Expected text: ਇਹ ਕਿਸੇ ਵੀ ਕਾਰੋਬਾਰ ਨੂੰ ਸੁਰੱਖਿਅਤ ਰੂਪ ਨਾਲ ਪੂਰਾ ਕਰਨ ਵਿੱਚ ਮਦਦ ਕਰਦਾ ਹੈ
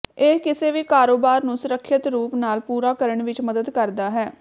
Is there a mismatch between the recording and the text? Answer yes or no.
no